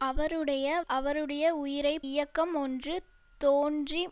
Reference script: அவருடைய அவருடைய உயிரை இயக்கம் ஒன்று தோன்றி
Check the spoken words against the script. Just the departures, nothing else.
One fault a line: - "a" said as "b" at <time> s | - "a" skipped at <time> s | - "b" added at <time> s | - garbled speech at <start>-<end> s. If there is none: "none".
none